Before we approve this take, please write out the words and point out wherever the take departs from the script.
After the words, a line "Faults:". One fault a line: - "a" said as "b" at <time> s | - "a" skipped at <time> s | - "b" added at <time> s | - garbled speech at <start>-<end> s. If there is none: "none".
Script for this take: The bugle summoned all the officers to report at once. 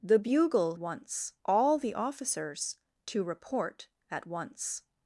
The bugle once all the officers to report at once.
Faults:
- "summoned" said as "once" at 0.8 s